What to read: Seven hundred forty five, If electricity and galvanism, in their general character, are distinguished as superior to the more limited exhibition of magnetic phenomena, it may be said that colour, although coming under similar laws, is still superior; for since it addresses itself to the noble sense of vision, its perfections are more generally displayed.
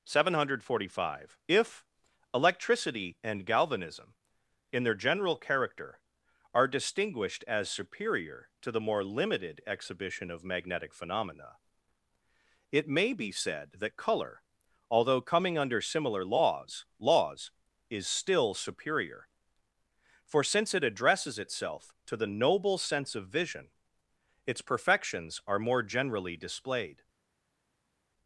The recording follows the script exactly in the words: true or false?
false